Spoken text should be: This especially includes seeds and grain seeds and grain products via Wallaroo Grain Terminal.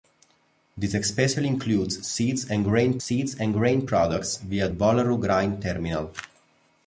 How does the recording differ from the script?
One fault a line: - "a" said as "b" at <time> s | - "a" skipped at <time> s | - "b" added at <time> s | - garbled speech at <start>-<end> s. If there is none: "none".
none